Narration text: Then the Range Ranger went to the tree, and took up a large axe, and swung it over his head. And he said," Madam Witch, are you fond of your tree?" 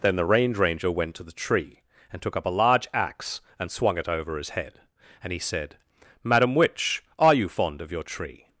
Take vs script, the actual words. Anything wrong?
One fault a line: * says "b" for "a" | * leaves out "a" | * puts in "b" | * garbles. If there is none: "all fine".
all fine